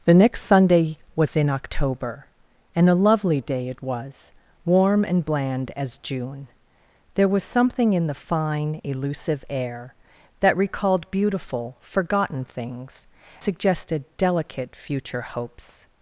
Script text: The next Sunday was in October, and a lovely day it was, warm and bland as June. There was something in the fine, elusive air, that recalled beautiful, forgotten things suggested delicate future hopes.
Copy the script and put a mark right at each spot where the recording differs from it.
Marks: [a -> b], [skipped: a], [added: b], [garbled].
The next Sunday was in October, and a lovely day it was, warm and bland as June. There was something in the fine, elusive air, that recalled beautiful, forgotten things suggested delicate future hopes.